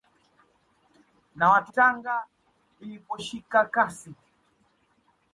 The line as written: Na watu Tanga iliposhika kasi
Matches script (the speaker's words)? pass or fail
pass